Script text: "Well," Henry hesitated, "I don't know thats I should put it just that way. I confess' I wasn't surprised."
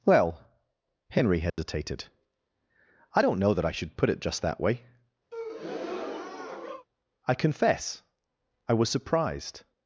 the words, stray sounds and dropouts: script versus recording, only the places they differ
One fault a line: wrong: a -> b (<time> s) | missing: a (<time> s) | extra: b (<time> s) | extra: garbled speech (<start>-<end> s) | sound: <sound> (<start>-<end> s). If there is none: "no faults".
sound: dropout (1.5-1.6 s)
wrong: thats -> that (3.5 s)
sound: breath (5.3-6.9 s)
wrong: wasn't -> was (8.7 s)